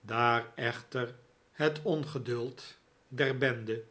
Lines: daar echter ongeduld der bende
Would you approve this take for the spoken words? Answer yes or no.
no